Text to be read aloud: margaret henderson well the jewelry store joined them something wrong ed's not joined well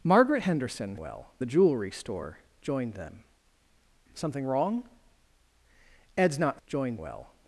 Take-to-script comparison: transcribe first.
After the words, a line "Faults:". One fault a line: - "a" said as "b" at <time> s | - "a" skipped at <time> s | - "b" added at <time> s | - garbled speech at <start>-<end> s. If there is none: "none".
margaret henderson well the jewelry store joined them something wrong ed's not joined well
Faults:
none